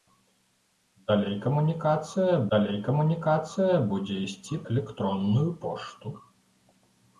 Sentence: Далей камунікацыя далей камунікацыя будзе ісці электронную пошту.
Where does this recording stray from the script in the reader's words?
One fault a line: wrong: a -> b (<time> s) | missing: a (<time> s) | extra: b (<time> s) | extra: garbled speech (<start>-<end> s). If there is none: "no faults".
no faults